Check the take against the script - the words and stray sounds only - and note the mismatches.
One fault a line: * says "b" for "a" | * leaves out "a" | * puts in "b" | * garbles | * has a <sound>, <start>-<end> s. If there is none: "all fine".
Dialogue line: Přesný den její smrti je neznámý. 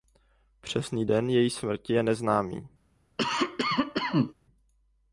* has a cough, 3.2-4.3 s